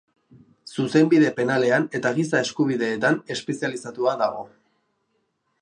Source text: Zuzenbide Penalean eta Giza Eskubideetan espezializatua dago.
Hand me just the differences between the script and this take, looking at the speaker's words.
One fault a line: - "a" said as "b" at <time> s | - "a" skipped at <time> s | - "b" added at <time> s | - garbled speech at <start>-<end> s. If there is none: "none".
none